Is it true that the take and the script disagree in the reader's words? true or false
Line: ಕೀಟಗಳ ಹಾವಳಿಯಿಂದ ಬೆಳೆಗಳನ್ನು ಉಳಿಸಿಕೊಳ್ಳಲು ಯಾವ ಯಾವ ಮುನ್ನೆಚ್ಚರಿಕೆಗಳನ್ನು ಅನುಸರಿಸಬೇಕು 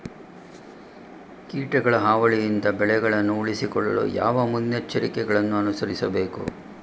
true